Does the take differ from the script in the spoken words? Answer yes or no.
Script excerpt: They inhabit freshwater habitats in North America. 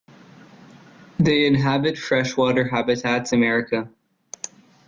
yes